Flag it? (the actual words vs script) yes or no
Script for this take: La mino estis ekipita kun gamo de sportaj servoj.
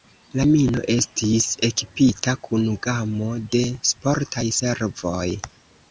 no